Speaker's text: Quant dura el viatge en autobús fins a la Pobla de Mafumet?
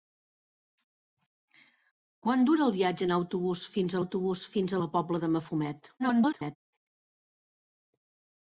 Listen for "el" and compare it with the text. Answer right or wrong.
right